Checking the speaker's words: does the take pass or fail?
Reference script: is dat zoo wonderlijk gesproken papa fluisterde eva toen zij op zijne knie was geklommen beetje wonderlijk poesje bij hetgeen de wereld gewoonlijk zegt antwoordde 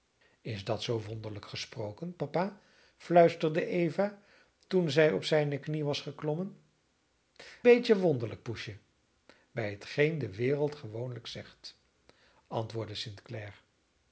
pass